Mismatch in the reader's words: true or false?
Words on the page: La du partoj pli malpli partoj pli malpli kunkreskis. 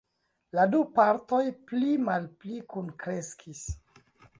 true